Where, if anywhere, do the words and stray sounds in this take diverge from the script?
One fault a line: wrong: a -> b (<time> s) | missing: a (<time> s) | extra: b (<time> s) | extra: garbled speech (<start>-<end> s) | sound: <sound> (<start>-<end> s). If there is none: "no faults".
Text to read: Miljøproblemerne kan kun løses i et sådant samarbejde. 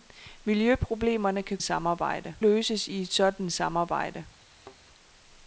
wrong: kun -> samarbejde (1.6 s)
sound: thud (4.5-4.8 s)